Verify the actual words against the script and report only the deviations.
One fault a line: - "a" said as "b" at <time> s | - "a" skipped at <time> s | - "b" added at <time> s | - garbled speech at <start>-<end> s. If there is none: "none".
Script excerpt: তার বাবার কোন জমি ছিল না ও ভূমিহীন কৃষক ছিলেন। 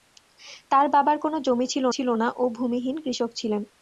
- "ছিল" added at 2.0 s